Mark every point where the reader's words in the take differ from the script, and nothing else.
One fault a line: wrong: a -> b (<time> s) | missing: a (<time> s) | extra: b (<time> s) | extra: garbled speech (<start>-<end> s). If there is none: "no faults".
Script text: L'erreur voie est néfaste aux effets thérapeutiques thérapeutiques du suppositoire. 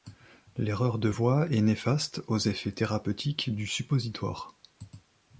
extra: de (1.0 s)
missing: thérapeutiques (3.5 s)